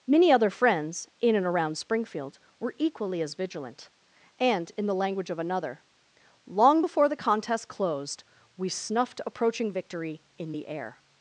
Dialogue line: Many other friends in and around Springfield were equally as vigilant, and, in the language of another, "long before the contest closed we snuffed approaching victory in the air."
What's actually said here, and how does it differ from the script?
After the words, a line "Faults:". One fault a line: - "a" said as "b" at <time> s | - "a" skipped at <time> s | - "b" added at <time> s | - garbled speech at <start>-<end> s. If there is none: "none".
Many other friends in and around Springfield were equally as vigilant, and, in the language of another, "long before the contest closed we snuffed approaching victory in the air."
Faults:
none